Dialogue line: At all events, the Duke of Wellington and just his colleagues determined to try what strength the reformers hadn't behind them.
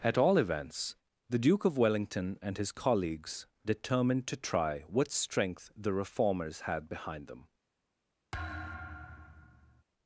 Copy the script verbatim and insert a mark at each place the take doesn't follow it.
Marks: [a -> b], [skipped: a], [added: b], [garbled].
At all events, the Duke of Wellington and [skipped: just] his colleagues determined to try what strength the reformers [hadn't -> had] behind them.